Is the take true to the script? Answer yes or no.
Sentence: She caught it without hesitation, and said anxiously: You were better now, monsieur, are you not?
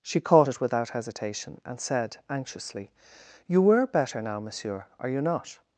yes